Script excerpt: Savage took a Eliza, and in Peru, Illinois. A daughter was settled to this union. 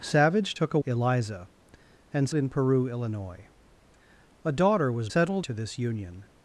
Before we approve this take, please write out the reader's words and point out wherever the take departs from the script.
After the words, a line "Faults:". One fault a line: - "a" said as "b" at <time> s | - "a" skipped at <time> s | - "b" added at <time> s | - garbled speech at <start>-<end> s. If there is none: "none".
Savage took a Eliza, and in Peru, Illinois. A daughter was settled to this union.
Faults:
none